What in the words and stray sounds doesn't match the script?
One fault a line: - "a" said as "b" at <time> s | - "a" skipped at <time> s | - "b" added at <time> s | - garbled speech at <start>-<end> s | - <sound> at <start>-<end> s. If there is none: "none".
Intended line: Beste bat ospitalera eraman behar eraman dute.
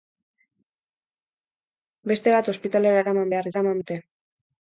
none